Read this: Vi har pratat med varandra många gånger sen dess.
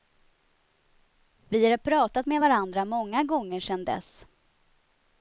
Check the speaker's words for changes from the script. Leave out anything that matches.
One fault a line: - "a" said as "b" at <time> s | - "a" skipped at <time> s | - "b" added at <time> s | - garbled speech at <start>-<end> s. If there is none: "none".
none